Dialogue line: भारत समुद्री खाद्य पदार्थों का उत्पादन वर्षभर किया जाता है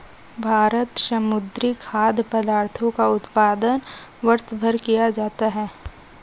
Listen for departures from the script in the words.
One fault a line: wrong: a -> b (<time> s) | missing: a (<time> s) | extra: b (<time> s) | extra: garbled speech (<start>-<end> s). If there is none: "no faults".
no faults